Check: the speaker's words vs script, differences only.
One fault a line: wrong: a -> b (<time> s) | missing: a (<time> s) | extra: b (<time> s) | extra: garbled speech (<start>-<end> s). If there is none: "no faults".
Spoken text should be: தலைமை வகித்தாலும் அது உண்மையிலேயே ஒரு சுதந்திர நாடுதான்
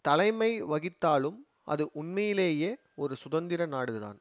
no faults